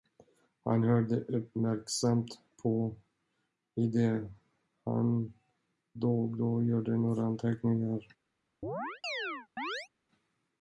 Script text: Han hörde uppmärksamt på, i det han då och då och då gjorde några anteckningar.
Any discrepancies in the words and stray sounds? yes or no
yes